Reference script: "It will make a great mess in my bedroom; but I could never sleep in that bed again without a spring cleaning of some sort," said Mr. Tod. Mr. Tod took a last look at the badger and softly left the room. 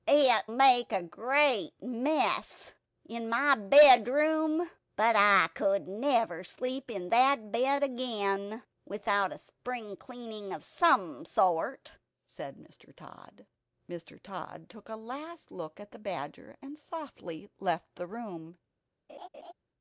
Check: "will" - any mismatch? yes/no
yes